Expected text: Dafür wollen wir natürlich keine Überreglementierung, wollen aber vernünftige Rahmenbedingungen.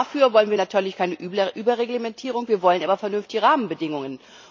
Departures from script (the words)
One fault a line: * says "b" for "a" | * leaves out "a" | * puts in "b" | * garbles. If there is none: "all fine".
* puts in "wir"